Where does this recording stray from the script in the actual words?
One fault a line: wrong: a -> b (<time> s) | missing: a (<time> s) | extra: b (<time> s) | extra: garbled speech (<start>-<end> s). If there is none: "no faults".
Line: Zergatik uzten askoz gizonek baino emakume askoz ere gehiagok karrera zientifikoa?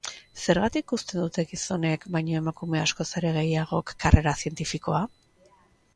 wrong: askoz -> dute (1.2 s)